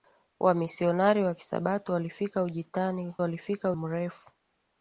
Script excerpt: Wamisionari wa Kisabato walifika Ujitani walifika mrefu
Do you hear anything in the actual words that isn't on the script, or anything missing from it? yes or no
no